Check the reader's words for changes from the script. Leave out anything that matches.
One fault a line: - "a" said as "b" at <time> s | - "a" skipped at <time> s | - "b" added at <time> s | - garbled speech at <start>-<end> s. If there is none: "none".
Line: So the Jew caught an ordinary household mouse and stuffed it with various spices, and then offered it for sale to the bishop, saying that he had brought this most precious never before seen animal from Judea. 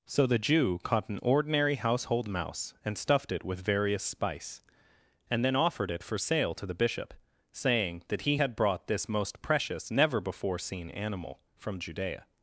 - "spices" said as "spice" at 4.0 s